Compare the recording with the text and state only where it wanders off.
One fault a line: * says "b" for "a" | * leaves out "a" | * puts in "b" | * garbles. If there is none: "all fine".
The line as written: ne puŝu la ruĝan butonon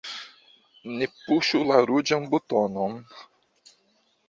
all fine